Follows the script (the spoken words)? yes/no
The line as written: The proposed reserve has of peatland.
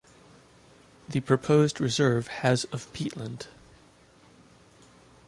yes